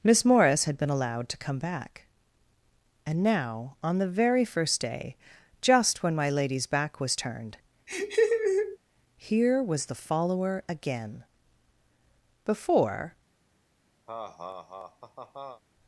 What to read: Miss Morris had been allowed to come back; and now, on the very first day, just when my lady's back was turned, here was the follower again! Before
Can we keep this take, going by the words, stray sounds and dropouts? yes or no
no